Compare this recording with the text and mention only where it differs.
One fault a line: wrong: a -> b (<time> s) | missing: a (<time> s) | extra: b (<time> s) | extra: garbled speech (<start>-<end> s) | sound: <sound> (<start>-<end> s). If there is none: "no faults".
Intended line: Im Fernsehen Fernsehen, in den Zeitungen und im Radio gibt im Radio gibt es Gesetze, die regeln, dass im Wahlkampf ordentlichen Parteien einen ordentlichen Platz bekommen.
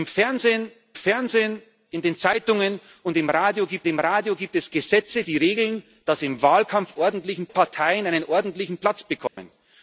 sound: dropout (9.3-9.4 s)